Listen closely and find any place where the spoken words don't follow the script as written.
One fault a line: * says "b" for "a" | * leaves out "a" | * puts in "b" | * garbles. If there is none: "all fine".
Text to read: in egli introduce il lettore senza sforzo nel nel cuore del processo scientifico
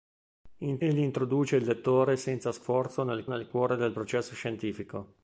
all fine